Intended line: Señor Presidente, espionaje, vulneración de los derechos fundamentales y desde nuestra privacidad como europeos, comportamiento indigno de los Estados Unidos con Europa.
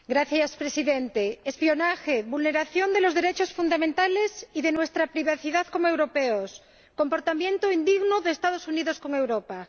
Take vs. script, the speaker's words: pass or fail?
fail